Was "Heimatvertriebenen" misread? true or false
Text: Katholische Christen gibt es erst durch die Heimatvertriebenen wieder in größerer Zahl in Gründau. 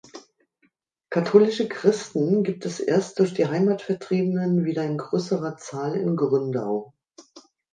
false